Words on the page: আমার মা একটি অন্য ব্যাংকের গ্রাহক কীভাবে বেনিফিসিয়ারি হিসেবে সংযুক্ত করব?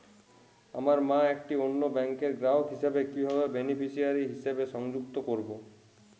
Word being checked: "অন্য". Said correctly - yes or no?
yes